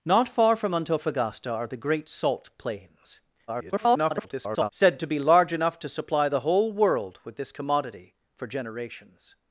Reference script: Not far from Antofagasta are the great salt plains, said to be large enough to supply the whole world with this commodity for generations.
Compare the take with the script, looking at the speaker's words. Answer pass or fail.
fail